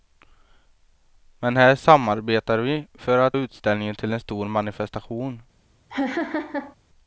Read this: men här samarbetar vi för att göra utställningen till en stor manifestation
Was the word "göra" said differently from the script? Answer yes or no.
yes